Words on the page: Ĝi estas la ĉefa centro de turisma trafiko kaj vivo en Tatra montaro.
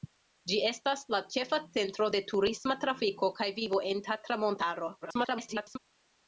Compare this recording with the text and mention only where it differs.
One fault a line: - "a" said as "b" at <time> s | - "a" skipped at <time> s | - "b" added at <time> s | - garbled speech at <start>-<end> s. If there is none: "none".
- garbled speech at 5.0-5.8 s